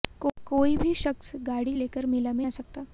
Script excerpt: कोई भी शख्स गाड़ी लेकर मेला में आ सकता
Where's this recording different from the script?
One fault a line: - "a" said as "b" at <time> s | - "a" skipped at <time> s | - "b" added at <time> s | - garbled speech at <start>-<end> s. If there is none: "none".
none